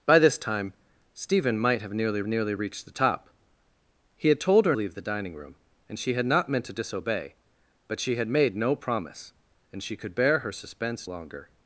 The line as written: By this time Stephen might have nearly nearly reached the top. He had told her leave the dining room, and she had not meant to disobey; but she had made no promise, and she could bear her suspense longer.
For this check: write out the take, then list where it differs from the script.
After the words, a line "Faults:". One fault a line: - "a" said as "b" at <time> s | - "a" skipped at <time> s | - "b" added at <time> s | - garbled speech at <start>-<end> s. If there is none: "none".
By this time Stephen might have nearly nearly reached the top. He had told her leave the dining room, and she had not meant to disobey; but she had made no promise, and she could bear her suspense longer.
Faults:
none